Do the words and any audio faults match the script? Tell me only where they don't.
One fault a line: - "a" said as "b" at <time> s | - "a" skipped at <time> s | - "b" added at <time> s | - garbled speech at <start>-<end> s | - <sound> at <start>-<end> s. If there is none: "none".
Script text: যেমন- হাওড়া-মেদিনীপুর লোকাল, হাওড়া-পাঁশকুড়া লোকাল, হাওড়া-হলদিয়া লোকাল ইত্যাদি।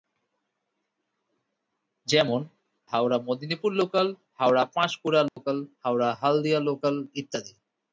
- dropout at 5.3-5.4 s